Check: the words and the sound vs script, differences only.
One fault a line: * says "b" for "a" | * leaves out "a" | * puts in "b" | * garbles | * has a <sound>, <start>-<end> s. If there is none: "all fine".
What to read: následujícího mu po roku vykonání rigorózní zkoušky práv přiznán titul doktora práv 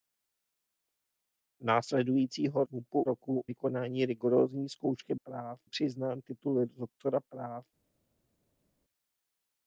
all fine